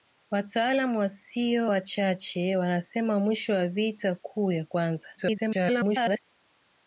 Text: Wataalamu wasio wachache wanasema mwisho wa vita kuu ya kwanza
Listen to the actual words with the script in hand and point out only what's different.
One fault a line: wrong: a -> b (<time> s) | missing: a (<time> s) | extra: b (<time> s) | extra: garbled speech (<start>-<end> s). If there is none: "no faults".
extra: garbled speech (5.2-6.2 s)